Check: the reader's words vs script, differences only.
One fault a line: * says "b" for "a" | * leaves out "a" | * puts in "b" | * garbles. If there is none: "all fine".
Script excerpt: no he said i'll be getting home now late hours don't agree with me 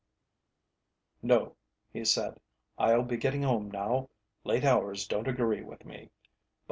all fine